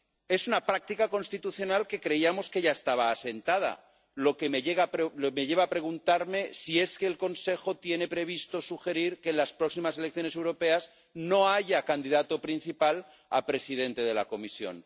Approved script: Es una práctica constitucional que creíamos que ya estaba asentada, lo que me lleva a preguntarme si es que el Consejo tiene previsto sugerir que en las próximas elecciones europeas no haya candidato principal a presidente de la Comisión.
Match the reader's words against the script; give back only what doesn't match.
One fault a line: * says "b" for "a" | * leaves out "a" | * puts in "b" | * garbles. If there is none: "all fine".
all fine